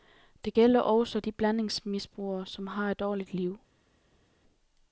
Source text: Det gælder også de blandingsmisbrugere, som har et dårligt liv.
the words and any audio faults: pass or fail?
pass